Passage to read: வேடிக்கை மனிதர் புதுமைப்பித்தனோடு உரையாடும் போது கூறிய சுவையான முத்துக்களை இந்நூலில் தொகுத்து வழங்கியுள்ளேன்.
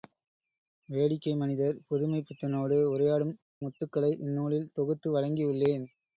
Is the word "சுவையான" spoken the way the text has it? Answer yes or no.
no